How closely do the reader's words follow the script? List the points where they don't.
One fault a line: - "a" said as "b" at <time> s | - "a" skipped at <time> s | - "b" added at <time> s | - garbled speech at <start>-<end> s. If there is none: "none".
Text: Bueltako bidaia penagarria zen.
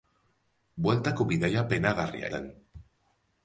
none